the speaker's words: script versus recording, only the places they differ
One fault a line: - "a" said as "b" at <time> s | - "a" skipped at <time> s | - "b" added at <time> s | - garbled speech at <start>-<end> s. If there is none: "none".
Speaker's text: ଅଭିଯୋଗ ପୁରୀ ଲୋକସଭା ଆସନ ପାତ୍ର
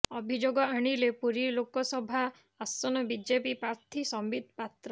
- "ଆଣିଲେ" added at 0.7 s
- "ବିଜେପି ପ୍ରାର୍ଥୀ ସମ୍ବିତ" added at 3.1 s